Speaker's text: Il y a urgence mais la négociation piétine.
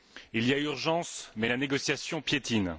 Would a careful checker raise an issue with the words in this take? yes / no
no